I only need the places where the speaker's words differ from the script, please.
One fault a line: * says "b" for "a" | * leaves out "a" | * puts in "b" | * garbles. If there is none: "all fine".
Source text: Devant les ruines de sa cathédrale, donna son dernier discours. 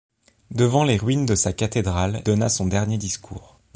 all fine